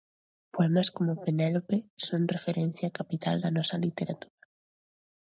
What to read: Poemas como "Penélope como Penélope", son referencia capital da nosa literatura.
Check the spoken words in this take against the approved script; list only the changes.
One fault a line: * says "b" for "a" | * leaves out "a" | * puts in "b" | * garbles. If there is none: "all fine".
* leaves out "como Penélope"